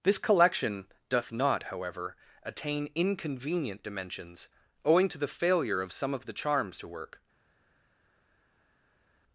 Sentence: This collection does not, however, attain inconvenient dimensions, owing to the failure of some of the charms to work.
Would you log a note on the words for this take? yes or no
yes